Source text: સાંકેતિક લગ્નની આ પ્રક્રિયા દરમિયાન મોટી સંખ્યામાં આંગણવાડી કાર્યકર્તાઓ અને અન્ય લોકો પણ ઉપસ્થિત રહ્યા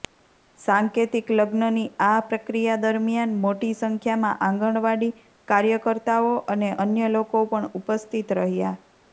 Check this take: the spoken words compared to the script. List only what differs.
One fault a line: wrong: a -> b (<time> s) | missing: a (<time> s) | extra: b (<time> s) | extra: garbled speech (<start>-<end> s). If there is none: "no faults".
no faults